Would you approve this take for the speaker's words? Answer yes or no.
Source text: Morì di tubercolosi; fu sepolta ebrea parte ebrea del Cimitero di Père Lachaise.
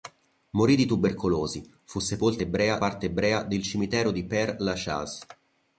yes